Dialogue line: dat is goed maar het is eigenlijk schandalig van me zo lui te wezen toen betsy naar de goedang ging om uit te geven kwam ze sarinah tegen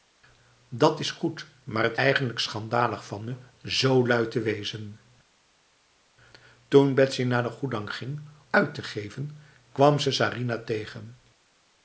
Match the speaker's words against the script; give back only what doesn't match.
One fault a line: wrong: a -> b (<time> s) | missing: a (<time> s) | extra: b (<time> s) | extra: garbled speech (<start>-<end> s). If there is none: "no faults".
missing: is (2.0 s)
missing: om (8.2 s)